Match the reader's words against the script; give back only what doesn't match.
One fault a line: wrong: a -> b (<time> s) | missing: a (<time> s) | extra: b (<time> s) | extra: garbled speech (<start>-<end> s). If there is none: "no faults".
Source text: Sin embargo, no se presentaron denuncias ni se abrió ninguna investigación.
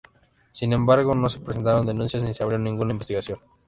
no faults